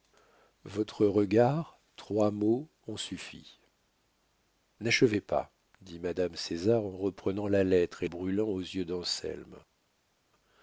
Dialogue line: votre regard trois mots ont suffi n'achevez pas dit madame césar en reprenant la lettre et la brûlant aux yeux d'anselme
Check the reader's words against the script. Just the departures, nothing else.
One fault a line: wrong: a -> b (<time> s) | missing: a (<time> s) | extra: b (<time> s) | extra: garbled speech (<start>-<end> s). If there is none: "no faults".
missing: la (8.1 s)